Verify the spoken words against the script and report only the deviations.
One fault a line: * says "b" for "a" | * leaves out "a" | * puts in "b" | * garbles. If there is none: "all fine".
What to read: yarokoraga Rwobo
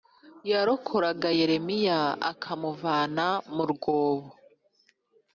* puts in "Yeremiya akamuvana mu"